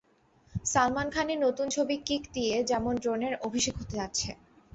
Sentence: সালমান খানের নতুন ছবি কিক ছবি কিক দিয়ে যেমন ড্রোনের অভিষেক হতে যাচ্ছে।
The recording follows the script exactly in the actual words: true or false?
false